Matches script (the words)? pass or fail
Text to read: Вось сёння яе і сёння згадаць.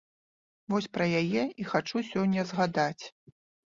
fail